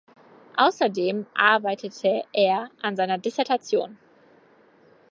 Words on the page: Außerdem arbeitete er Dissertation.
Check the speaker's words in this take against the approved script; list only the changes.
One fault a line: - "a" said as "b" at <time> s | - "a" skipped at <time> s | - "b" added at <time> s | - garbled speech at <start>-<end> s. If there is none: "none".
- "an seiner" added at 2.8 s